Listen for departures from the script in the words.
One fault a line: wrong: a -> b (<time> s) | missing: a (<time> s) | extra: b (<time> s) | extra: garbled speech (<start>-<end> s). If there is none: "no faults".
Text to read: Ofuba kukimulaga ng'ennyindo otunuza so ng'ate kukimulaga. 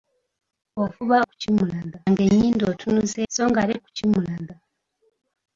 no faults